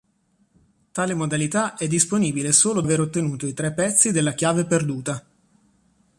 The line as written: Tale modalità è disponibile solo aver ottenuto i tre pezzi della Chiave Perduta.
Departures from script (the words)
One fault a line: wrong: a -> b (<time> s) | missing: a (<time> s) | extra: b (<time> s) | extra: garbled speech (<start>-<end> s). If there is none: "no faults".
no faults